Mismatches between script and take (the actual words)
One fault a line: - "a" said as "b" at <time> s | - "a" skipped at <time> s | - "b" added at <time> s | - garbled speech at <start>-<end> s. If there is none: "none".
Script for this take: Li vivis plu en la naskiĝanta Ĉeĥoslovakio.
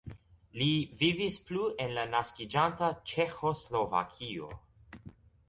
none